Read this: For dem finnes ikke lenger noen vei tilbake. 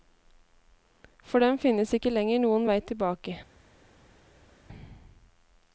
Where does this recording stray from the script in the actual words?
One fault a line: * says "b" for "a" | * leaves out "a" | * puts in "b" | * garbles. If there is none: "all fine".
all fine